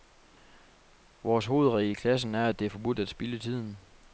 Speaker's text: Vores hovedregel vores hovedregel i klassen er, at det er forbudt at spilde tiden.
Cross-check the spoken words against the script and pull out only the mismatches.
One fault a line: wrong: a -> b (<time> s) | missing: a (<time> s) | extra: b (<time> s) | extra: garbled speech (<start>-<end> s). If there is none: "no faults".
missing: vores hovedregel (1.9 s)